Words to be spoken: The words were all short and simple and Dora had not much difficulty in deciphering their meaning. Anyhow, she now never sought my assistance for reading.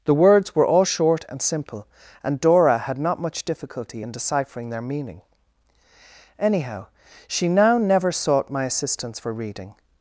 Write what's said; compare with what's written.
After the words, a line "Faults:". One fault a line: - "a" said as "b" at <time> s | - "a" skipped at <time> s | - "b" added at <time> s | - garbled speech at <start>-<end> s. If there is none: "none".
The words were all short and simple and Dora had not much difficulty in deciphering their meaning. Anyhow, she now never sought my assistance for reading.
Faults:
none